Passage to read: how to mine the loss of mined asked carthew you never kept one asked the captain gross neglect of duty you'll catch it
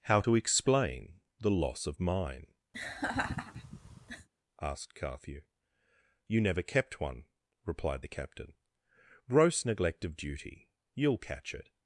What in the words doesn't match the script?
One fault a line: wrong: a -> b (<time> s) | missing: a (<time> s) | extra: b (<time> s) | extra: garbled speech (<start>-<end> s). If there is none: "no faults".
wrong: mine -> explain (0.3 s)
wrong: mined -> mine (2.0 s)
wrong: asked -> replied (7.6 s)